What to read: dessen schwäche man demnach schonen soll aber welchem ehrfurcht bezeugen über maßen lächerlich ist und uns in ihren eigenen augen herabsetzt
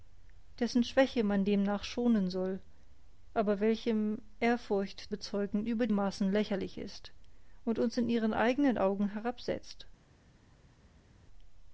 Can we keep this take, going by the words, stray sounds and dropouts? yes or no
yes